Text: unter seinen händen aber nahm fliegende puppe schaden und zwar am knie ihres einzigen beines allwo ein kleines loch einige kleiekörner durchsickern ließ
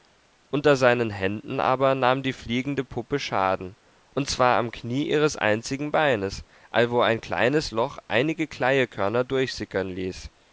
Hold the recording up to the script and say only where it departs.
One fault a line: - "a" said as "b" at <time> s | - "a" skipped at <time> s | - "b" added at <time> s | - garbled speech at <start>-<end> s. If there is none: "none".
- "die" added at 2.2 s